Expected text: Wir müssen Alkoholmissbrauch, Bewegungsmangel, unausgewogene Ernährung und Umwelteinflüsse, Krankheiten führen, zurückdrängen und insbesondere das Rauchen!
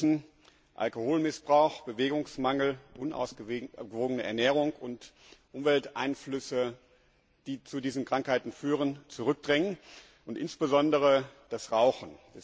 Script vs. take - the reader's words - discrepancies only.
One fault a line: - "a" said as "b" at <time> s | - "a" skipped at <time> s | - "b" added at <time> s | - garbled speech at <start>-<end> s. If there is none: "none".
- "die zu diesen" added at 7.5 s